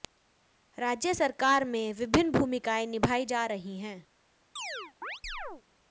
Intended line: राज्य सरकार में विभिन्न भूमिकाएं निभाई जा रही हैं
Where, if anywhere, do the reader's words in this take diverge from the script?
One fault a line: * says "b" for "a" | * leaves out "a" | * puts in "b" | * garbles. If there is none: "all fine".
all fine